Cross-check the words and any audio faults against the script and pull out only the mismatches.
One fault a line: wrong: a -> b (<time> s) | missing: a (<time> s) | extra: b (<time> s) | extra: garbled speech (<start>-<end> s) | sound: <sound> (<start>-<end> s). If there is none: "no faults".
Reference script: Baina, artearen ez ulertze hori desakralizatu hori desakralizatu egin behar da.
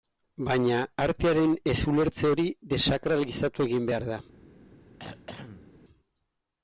missing: hori desakralizatu (3.7 s)
sound: throat clearing (5.0-5.7 s)